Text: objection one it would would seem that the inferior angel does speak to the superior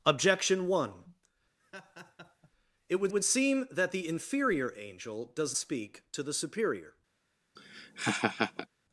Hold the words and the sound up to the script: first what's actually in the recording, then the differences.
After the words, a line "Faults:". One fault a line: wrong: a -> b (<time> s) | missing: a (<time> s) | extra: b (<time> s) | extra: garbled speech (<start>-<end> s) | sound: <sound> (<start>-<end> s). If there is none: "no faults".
objection one it would would seem that the inferior angel does speak to the superior
Faults:
sound: laugh (1.6-2.5 s)
sound: laugh (7.6-8.7 s)